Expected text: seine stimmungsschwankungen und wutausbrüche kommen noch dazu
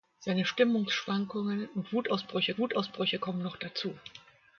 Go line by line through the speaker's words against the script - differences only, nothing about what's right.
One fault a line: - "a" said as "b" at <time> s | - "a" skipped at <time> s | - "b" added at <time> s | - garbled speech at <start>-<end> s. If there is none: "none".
- "wutausbrüche" added at 2.6 s